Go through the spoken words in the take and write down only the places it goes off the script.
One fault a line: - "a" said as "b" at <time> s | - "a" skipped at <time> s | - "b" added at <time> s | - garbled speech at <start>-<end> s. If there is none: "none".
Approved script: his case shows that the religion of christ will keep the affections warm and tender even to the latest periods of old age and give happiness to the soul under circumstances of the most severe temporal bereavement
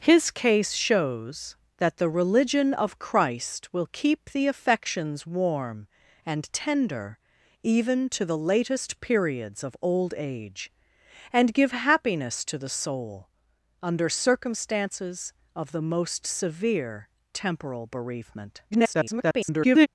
- garbled speech at 18.7-19.9 s